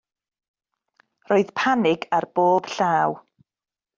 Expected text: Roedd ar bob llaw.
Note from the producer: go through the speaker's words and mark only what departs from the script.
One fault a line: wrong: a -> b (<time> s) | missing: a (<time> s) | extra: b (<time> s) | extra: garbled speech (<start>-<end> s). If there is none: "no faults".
extra: panig (1.6 s)